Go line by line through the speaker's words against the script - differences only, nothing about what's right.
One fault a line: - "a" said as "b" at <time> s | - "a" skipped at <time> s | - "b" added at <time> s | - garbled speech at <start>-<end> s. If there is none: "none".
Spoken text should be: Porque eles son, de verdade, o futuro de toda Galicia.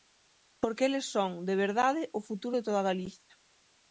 none